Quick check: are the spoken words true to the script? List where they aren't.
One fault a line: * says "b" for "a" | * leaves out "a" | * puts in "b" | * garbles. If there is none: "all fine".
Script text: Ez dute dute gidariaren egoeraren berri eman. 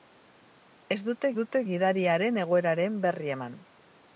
all fine